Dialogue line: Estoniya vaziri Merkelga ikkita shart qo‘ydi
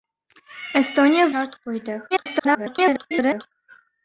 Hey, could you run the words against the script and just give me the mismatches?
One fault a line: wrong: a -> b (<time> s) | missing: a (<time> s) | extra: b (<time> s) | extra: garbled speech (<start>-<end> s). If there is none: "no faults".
missing: vaziri Merkelga ikkita (1.3 s)
extra: garbled speech (2.1-3.5 s)